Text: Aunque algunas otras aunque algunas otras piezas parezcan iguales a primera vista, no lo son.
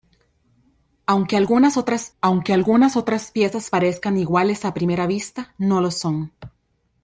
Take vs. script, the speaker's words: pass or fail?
pass